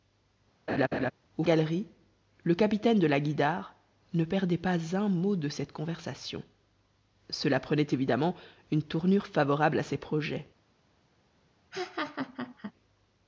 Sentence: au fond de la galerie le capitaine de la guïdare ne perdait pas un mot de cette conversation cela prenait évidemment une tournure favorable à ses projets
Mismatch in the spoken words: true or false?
true